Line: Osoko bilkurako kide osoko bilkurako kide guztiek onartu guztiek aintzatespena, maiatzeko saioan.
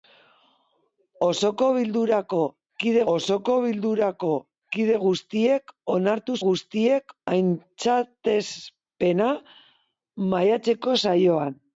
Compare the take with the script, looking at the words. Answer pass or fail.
pass